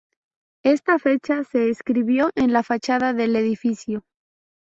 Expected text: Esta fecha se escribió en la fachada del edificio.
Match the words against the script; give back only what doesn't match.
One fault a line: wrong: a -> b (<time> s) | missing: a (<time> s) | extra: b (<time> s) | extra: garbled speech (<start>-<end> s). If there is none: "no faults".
no faults